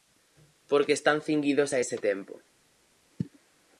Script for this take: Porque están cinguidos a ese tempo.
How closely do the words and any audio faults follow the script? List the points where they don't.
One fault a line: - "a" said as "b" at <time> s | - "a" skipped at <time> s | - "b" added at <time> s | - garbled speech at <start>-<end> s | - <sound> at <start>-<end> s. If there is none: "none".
none